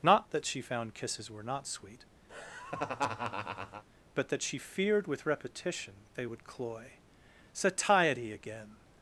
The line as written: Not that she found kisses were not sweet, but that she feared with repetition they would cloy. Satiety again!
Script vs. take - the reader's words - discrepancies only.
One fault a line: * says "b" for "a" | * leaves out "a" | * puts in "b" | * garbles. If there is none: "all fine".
all fine